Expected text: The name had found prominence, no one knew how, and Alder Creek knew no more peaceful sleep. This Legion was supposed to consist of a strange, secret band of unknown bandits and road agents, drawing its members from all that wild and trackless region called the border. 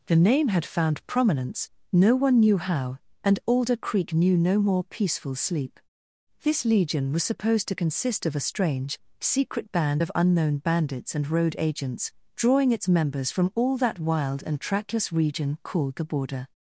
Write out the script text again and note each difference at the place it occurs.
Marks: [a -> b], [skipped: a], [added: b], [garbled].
The name had found prominence, no one knew how, and Alder Creek knew no more peaceful sleep. This Legion was supposed to consist of a strange, secret band of unknown bandits and road agents, drawing its members from all that wild and trackless region called the border.